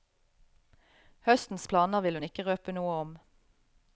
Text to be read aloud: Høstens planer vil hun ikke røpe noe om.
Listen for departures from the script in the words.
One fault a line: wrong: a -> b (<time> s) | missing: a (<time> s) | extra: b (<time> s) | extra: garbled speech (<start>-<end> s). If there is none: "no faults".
no faults